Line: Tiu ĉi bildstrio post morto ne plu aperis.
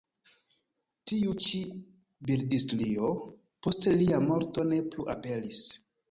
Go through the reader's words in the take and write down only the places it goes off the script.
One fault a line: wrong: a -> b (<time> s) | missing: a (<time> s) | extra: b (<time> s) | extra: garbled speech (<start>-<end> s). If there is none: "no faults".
extra: lia (4.0 s)